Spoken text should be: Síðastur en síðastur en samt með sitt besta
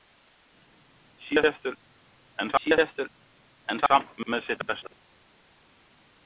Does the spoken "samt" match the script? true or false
true